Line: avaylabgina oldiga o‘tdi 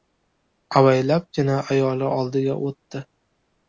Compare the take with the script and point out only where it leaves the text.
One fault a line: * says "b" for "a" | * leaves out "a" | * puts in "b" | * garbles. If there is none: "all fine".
* puts in "ayoli"